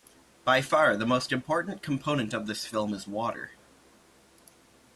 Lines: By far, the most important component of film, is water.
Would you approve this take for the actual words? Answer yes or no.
no